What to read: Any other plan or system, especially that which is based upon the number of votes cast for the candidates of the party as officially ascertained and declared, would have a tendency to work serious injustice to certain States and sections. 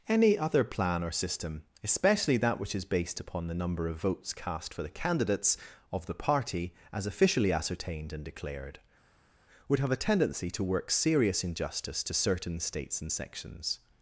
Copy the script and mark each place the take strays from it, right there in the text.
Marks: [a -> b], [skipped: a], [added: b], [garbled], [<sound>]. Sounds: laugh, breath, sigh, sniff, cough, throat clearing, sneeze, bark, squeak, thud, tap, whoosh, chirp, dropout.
Any other plan or system, especially that which is based upon the number of votes cast for the candidates of the party as officially ascertained and declared, would have a tendency to work serious injustice to certain States and sections.